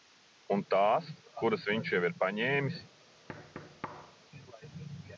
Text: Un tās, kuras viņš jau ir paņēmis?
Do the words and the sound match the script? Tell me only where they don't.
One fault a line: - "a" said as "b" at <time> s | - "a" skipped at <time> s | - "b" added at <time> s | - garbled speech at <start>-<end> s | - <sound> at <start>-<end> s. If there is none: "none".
- thud at 3.3-4.2 s